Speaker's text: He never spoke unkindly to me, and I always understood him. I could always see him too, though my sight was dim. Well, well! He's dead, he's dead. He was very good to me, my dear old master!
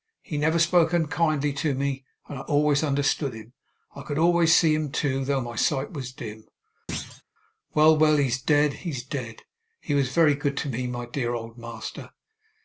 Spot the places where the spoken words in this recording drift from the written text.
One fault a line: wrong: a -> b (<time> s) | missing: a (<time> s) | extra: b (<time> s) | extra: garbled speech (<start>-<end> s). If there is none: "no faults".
no faults